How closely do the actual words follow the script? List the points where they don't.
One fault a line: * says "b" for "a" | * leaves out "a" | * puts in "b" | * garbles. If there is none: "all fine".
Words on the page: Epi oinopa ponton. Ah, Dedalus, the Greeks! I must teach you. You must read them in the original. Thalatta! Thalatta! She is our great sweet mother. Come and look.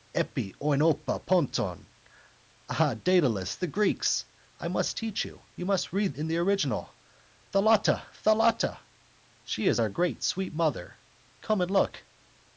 * leaves out "them"